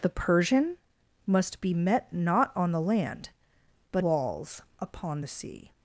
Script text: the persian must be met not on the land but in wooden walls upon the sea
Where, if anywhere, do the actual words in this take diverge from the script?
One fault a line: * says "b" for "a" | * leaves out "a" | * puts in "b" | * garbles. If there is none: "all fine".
* leaves out "in wooden"